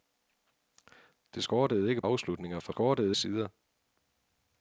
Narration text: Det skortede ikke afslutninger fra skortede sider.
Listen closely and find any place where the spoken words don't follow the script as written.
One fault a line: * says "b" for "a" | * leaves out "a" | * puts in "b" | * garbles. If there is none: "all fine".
all fine